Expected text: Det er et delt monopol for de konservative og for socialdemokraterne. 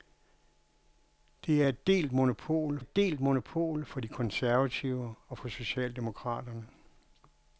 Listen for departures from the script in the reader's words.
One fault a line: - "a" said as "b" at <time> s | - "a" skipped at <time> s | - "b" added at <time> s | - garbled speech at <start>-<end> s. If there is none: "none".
- "et delt monopol" added at 2.8 s